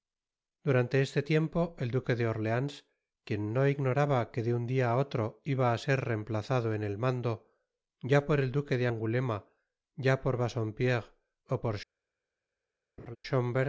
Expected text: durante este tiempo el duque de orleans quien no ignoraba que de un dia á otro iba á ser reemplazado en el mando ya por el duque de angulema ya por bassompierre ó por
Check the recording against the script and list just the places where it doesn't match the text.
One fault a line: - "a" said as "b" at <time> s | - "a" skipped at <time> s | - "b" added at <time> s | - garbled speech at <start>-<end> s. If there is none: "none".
none